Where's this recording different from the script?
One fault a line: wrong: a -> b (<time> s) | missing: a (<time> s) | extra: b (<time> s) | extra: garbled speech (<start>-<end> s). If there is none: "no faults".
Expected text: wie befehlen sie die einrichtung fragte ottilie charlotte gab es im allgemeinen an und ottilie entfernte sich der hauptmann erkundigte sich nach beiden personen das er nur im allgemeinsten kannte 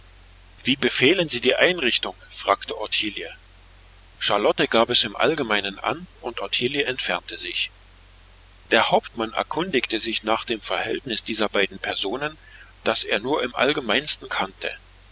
extra: dem verhältnis dieser (10.4 s)